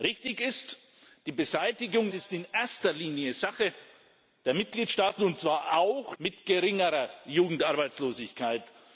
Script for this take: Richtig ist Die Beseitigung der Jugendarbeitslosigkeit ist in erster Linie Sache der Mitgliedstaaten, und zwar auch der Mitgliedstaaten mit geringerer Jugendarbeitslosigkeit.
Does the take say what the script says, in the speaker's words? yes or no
no